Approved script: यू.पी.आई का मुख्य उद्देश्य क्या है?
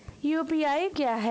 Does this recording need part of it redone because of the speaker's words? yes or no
yes